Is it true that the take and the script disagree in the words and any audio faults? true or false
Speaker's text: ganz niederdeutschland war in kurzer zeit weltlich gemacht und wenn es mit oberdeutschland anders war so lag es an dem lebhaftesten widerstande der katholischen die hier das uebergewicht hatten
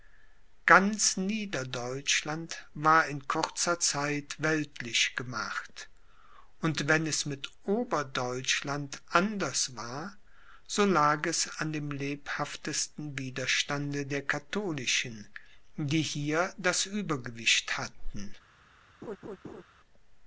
true